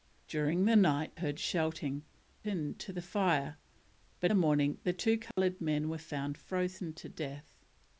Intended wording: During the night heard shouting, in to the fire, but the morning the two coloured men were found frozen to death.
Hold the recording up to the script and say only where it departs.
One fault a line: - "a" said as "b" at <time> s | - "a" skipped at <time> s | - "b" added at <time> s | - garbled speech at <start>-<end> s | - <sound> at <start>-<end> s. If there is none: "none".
- dropout at 5.3-5.4 s